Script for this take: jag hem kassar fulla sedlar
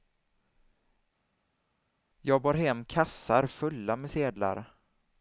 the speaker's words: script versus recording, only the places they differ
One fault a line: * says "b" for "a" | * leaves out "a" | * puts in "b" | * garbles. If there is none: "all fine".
* puts in "bar"
* puts in "med"